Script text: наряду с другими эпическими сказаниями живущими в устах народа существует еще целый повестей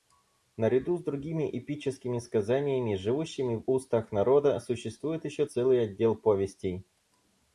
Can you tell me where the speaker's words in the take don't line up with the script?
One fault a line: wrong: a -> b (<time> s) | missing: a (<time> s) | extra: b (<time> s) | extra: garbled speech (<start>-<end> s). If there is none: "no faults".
extra: отдел (5.8 s)